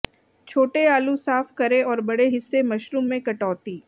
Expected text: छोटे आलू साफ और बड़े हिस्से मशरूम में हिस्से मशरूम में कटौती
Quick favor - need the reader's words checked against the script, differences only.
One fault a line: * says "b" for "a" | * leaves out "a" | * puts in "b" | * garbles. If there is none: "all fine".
* puts in "करें"
* leaves out "हिस्से मशरूम में"